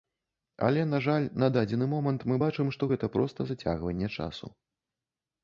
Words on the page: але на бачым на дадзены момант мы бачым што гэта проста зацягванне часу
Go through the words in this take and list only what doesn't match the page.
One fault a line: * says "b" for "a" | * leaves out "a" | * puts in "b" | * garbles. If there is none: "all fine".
* says "жаль" for "бачым"